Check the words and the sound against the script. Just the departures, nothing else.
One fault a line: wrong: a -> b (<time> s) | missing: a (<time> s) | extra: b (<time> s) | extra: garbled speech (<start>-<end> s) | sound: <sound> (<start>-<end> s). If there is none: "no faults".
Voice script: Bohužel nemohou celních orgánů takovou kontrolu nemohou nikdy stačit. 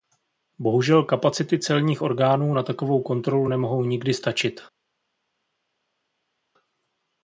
wrong: nemohou -> kapacity (1.0 s)
extra: na (2.5 s)